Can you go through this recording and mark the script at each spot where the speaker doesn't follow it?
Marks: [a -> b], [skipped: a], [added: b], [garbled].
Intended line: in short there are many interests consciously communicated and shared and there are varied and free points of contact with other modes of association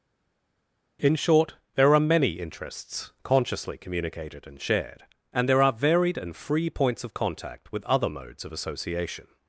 in short there are many interests consciously communicated and shared and there are varied and free points of contact with other modes of association